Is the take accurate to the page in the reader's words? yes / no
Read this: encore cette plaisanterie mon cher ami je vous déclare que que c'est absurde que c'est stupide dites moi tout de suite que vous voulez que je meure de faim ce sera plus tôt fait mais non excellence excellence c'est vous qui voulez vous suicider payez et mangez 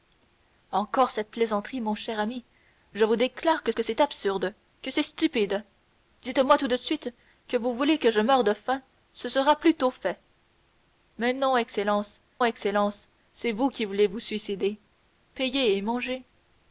yes